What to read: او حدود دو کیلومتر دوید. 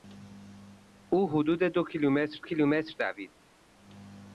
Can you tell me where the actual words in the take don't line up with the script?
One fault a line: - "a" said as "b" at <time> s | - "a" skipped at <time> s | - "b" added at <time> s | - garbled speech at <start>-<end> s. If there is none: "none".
- "کیلومتر" added at 2.4 s